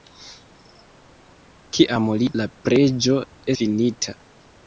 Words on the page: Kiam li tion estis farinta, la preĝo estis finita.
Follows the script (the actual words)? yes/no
no